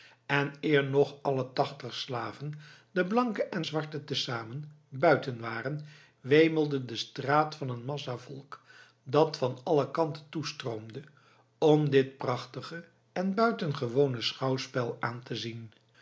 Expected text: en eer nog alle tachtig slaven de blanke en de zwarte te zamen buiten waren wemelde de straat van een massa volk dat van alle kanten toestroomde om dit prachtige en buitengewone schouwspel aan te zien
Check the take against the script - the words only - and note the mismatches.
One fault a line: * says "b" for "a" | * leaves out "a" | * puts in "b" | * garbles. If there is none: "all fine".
* leaves out "de"